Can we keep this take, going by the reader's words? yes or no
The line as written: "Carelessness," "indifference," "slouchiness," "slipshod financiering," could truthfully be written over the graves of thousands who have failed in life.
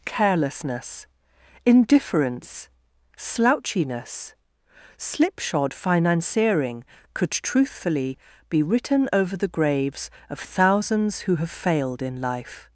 yes